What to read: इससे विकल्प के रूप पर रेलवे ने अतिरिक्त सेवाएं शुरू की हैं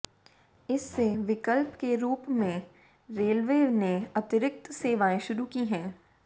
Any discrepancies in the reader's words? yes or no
yes